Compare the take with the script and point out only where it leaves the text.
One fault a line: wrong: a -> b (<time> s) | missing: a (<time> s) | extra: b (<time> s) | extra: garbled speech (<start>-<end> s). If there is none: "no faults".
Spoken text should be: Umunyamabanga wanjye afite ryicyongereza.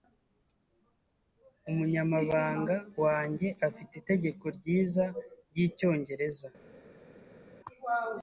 extra: itegeko ryiza (4.0 s)